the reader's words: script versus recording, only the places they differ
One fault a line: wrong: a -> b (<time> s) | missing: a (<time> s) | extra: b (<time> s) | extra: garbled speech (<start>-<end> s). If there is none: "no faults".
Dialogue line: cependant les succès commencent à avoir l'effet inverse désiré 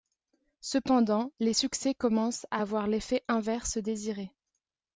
no faults